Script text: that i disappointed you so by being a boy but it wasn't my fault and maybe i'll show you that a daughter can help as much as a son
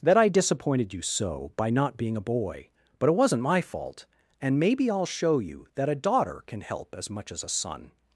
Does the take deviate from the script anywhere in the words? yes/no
yes